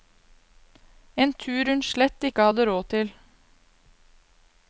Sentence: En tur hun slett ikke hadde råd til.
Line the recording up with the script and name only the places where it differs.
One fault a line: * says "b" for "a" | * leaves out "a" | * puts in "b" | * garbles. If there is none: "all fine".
all fine